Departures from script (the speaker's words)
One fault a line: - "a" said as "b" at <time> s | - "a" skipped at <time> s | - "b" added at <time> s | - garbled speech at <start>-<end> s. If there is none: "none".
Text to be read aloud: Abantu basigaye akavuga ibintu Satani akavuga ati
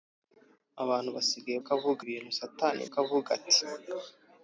none